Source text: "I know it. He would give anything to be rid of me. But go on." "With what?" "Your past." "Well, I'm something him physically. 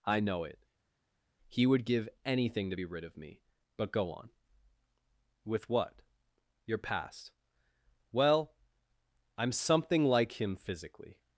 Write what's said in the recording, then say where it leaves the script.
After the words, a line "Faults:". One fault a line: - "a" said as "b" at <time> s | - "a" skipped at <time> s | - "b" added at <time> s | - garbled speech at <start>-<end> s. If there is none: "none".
"I know it. He would give anything to be rid of me. But go on." "With what?" "Your past." "Well, I'm something like him physically.
Faults:
- "like" added at 10.0 s